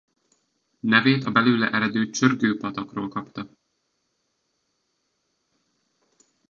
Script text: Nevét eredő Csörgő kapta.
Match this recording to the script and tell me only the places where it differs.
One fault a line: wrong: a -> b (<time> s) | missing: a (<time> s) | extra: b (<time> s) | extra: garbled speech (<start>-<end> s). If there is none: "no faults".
extra: a belőle (1.2 s)
extra: patakról (2.6 s)